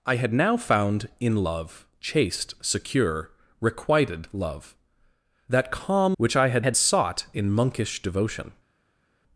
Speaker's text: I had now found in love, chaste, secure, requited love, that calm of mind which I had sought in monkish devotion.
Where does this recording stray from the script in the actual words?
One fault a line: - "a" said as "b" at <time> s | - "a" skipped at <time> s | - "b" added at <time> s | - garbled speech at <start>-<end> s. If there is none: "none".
- "of mind" skipped at 6.2 s
- "had" added at 6.6 s